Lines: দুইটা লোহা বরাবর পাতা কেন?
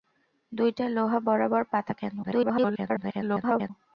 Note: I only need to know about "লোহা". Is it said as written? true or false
true